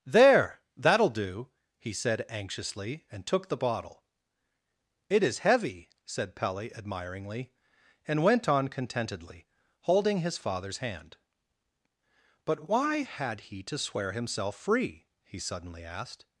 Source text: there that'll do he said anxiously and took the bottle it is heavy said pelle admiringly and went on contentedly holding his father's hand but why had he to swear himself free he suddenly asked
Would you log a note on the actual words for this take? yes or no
no